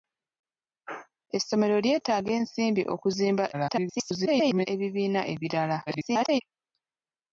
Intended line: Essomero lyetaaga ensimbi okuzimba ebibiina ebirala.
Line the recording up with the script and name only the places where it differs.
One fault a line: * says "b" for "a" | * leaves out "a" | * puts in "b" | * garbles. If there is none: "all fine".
* garbles
* garbles